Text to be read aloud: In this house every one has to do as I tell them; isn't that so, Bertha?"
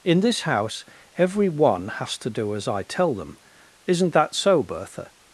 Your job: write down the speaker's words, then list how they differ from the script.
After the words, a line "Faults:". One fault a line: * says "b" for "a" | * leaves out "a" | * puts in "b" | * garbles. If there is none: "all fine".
In this house every one has to do as I tell them; isn't that so, Bertha?"
Faults:
all fine